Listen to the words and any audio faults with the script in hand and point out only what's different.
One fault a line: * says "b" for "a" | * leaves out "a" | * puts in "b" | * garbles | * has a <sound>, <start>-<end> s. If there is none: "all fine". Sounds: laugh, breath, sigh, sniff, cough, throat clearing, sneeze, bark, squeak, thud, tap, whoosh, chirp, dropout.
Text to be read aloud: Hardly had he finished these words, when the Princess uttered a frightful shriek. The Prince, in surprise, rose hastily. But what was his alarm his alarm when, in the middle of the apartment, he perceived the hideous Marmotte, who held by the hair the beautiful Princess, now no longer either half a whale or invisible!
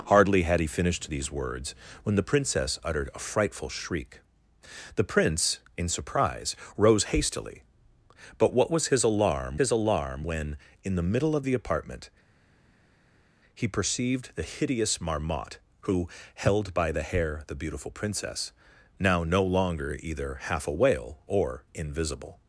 all fine